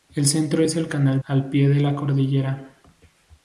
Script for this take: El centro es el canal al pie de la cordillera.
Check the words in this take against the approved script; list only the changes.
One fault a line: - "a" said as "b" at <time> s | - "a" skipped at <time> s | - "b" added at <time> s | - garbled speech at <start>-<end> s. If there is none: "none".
none